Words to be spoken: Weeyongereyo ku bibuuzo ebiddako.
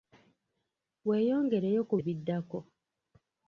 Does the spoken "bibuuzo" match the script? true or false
false